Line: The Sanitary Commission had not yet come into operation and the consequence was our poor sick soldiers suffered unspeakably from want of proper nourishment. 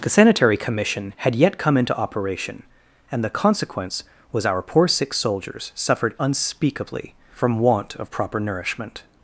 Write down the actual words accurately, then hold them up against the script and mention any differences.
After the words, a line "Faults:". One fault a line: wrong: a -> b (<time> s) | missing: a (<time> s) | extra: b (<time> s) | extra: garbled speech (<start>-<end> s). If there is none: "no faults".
The Sanitary Commission had yet come into operation and the consequence was our poor sick soldiers suffered unspeakably from want of proper nourishment.
Faults:
missing: not (1.4 s)